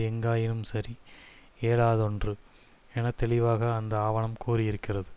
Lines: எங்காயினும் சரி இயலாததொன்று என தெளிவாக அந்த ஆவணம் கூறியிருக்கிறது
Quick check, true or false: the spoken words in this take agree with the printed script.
true